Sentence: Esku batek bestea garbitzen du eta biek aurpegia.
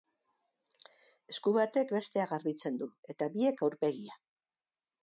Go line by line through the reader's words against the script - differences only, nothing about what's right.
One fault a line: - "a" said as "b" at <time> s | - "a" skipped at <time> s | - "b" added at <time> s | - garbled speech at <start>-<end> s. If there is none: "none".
none